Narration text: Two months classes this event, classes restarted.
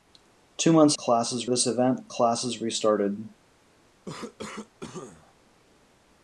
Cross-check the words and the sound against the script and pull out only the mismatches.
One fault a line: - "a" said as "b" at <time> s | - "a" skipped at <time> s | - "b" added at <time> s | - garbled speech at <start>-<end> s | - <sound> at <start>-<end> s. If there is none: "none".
- cough at 4.0-5.3 s